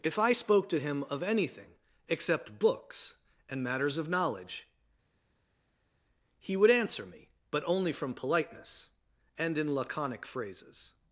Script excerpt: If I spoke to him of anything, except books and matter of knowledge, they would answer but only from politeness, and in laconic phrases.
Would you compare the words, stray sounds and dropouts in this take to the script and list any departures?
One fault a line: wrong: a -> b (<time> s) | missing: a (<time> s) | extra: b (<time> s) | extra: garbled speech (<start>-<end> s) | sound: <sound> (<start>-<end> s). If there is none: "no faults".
wrong: matter -> matters (3.6 s)
wrong: they -> he (6.4 s)
extra: me (7.1 s)